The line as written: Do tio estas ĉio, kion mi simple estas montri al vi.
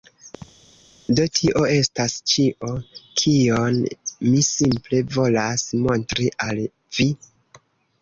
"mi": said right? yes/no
yes